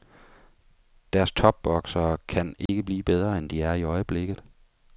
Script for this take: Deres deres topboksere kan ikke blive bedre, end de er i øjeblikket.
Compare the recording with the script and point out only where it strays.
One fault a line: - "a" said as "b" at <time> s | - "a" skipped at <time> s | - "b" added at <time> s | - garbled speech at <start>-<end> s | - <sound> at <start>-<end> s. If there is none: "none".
- "deres" skipped at 1.3 s
- dropout at 2.7-2.7 s